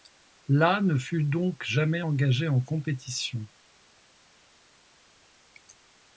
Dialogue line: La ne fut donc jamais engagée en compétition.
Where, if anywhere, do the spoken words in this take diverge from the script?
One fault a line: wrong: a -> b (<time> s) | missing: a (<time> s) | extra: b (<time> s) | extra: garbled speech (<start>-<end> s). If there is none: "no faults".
no faults